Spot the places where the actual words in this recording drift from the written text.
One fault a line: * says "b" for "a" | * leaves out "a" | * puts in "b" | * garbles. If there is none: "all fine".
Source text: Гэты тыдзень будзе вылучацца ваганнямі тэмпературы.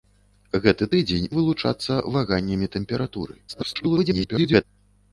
* leaves out "будзе"
* garbles